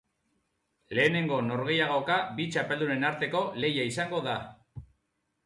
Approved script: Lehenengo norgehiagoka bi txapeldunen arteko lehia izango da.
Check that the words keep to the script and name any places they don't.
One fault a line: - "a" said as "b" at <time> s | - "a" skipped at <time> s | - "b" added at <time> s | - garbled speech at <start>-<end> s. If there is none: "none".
none